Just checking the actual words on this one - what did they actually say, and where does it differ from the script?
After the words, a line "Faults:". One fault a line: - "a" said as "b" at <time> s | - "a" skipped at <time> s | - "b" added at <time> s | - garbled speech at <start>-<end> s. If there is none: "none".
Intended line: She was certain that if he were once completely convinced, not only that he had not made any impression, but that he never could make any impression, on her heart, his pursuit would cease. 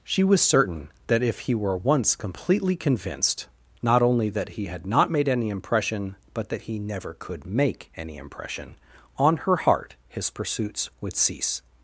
She was certain that if he were once completely convinced, not only that he had not made any impression, but that he never could make any impression, on her heart, his pursuits would cease.
Faults:
- "pursuit" said as "pursuits" at 10.3 s